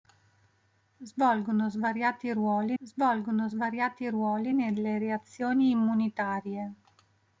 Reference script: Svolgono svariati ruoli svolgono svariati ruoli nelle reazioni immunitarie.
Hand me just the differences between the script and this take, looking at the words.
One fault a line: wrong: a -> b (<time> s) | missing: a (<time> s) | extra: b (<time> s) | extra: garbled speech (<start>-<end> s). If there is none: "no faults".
no faults